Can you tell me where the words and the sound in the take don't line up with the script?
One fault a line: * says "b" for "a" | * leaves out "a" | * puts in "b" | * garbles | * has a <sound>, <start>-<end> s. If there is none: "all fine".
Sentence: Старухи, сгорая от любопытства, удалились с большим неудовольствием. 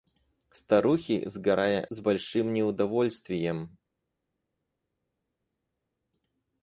* leaves out "от любопытства удалились"